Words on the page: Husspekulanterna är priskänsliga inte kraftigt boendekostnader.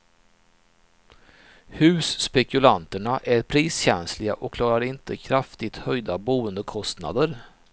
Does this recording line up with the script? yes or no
no